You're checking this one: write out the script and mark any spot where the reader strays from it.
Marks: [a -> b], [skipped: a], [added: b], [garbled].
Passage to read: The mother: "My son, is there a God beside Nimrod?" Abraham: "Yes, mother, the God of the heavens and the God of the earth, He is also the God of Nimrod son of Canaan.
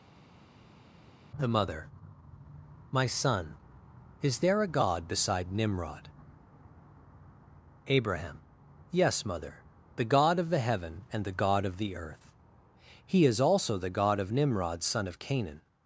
The mother: "My son, is there a God beside Nimrod?" Abraham: "Yes, mother, the God of the [heavens -> heaven] and the God of the earth, He is also the God of Nimrod son of Canaan.